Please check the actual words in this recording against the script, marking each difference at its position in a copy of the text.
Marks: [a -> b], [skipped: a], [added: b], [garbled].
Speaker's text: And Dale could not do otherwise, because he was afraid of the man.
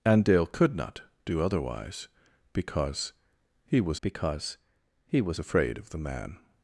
And Dale could not do otherwise, because he was [added: because he was] afraid of the man.